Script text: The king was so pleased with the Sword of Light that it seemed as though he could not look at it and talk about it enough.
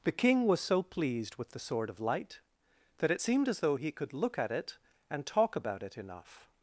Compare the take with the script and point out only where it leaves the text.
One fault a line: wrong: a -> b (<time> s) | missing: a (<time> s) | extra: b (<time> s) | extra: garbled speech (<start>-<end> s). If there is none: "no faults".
missing: not (4.1 s)